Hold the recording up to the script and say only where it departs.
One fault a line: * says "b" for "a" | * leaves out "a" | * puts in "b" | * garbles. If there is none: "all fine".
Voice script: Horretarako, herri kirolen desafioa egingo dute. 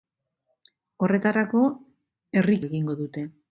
* leaves out "kirolen desafioa"